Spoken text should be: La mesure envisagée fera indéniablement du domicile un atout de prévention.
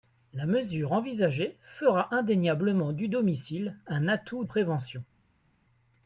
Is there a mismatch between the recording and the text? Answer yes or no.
yes